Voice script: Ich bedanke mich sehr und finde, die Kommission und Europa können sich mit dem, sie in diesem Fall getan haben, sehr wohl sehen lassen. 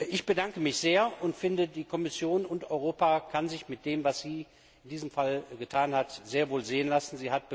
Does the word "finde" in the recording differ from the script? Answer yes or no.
no